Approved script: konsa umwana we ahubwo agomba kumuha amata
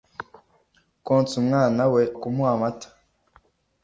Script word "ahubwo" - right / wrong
wrong